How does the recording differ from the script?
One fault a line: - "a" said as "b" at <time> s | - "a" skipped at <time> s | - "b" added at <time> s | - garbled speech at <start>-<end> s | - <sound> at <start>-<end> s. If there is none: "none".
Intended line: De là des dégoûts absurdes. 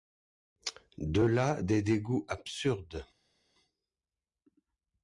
none